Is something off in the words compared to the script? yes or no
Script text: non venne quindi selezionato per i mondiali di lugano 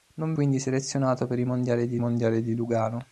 yes